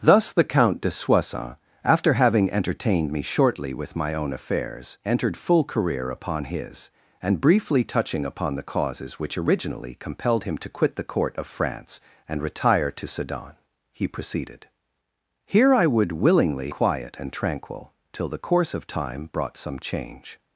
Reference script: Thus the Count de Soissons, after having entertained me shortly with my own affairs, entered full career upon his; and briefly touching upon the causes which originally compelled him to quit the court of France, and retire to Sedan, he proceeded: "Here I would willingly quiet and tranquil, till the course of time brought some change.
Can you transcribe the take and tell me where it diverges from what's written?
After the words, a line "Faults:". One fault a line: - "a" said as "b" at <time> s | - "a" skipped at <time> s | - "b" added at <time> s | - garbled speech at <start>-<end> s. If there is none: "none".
Thus the Count de Soissons, after having entertained me shortly with my own affairs, entered full career upon his; and briefly touching upon the causes which originally compelled him to quit the court of France, and retire to Sedan, he proceeded: "Here I would willingly quiet and tranquil, till the course of time brought some change.
Faults:
none